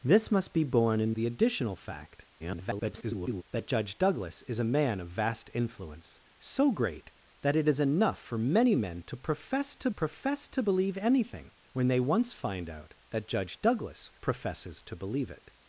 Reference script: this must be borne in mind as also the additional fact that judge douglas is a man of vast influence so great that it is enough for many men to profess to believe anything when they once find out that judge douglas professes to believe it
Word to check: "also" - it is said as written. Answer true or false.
false